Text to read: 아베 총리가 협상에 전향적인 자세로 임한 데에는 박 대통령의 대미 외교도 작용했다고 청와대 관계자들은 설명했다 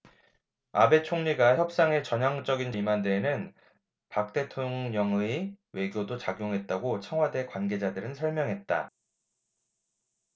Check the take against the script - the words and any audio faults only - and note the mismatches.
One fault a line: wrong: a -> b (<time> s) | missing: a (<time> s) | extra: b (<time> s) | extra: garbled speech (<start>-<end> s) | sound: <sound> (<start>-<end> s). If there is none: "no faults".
missing: 자세로 (2.7 s)
missing: 대미 (5.5 s)